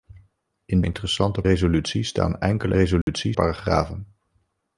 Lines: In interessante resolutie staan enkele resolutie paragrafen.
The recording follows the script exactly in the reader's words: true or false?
true